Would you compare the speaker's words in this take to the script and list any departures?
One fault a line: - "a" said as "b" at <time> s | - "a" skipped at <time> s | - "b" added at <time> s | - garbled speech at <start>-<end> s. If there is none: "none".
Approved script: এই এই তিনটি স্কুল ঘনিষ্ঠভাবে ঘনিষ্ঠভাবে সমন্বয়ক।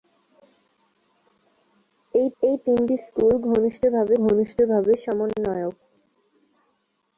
none